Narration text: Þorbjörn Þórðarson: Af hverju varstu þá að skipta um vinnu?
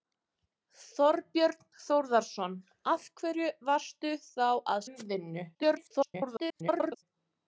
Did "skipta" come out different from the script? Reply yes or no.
yes